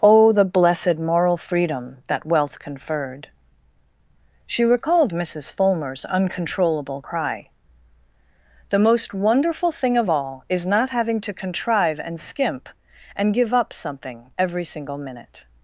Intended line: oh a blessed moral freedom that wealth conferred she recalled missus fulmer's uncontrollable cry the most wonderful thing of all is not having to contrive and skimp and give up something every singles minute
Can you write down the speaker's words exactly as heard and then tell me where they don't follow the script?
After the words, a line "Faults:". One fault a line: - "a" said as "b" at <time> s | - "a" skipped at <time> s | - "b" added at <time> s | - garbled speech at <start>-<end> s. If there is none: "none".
oh the blessed moral freedom that wealth conferred she recalled missus fulmer's uncontrollable cry the most wonderful thing of all is not having to contrive and skimp and give up something every single minute
Faults:
- "a" said as "the" at 0.3 s
- "singles" said as "single" at 14.6 s